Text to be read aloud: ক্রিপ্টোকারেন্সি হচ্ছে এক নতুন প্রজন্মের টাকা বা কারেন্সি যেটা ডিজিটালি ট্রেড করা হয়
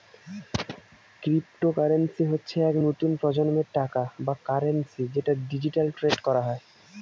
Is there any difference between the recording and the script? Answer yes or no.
no